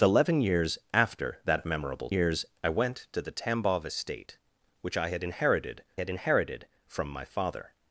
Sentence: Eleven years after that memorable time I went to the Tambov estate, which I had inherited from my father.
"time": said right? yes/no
no